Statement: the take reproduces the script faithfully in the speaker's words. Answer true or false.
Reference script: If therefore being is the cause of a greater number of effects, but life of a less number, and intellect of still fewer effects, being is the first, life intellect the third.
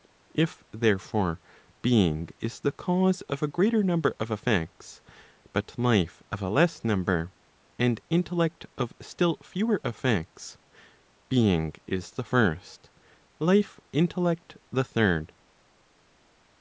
true